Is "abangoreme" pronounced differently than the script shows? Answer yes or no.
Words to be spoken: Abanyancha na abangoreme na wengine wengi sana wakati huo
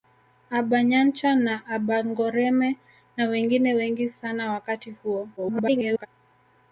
no